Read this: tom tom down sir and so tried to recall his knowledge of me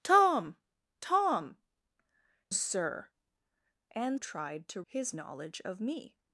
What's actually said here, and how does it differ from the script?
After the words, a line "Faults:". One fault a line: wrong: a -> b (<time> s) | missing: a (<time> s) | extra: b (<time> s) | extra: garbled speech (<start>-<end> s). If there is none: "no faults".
tom tom sir and tried to his knowledge of me
Faults:
missing: down (1.6 s)
missing: so (4.2 s)
missing: recall (4.8 s)